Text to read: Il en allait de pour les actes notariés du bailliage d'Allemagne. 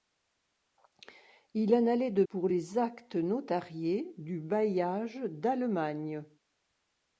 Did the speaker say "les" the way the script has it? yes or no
yes